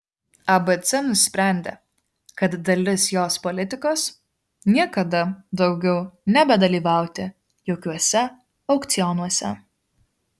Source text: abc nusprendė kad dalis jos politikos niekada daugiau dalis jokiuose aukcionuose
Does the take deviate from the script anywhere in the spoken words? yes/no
yes